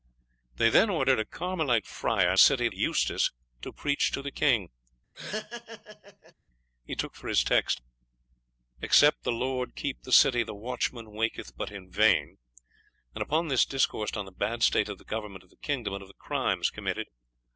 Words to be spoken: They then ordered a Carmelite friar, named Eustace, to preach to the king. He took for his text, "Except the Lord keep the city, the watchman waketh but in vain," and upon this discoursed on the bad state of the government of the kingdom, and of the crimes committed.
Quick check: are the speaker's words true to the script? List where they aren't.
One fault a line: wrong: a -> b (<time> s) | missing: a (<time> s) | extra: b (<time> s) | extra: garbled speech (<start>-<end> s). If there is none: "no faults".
wrong: named -> city (2.4 s)